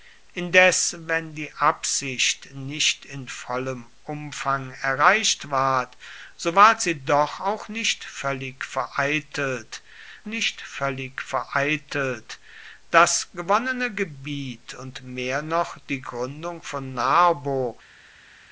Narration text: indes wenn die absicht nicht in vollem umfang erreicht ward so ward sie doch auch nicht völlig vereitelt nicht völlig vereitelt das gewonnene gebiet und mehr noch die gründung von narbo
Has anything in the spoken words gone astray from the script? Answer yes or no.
no